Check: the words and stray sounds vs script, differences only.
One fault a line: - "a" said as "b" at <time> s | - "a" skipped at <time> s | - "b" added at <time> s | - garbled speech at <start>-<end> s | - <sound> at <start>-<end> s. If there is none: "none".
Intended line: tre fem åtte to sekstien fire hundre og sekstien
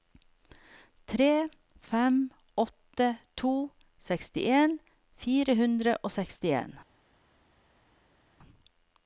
none